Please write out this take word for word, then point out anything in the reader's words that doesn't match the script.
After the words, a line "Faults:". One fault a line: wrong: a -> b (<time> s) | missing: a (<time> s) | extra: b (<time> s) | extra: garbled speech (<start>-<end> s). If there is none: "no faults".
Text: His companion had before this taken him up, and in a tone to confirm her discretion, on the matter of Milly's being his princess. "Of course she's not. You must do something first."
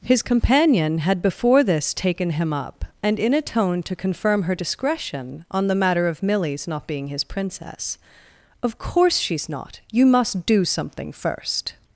His companion had before this taken him up, and in a tone to confirm her discretion, on the matter of Milly's not being his princess. "Of course she's not. You must do something first."
Faults:
extra: not (6.7 s)